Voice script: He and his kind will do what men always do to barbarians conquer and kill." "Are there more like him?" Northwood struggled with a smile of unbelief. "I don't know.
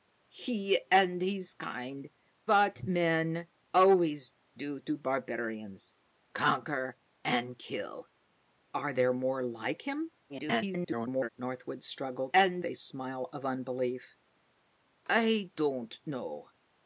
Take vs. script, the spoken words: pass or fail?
fail